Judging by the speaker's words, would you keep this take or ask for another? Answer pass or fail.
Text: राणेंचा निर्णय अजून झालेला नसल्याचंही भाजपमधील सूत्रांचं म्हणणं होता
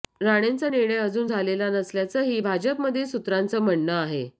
fail